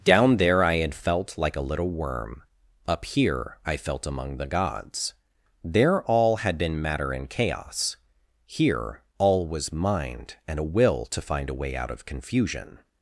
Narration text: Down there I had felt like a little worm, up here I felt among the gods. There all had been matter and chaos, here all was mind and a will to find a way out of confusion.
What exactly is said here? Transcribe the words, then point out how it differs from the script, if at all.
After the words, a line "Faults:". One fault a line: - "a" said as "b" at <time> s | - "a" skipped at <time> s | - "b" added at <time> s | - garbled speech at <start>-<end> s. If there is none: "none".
Down there I had felt like a little worm, up here I felt among the gods. There all had been matter and chaos, here all was mind and a will to find a way out of confusion.
Faults:
none